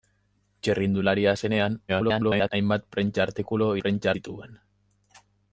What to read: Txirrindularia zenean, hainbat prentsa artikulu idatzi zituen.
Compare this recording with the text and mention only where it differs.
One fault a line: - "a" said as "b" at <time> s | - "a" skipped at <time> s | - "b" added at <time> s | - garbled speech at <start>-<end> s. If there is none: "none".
- garbled speech at 1.9-2.5 s
- "idatzi" said as "prentsa" at 3.8 s